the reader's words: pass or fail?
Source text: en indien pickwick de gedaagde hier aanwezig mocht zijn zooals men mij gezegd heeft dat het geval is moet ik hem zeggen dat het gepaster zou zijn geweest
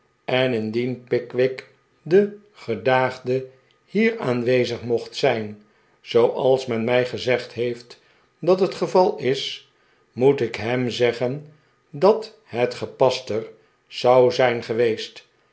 pass